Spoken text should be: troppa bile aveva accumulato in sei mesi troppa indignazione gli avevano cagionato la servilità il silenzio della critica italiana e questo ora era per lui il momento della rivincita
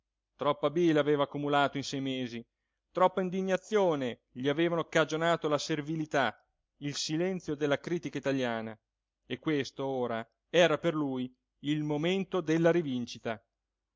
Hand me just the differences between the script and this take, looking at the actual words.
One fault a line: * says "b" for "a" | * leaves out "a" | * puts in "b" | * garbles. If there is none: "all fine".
all fine